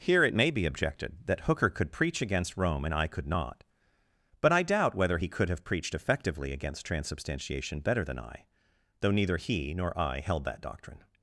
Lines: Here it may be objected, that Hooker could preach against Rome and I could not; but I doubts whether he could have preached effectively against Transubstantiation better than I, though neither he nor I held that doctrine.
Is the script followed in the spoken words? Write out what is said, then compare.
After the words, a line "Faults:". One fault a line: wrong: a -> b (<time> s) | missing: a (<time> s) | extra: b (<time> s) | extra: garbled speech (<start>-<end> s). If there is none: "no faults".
Here it may be objected, that Hooker could preach against Rome and I could not; but I doubt whether he could have preached effectively against Transubstantiation better than I, though neither he nor I held that doctrine.
Faults:
wrong: doubts -> doubt (4.6 s)